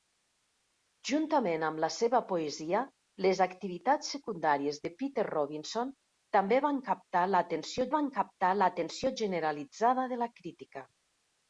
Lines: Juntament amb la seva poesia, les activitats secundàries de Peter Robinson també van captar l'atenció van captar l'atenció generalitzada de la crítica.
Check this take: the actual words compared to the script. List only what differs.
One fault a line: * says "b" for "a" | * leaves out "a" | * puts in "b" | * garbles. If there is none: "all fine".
all fine